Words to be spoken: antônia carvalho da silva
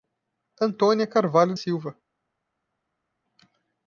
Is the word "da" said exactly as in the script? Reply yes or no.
no